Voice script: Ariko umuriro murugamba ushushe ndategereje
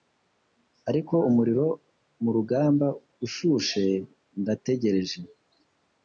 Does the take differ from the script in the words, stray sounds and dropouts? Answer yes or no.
no